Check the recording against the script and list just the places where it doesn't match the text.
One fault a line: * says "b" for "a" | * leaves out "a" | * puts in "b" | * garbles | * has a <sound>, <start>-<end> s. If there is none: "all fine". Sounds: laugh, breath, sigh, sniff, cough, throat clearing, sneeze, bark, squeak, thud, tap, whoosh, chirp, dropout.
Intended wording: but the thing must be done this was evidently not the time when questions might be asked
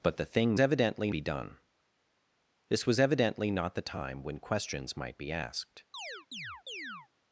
* says "evidently" for "must"
* has a chirp, 5.9-7.1 s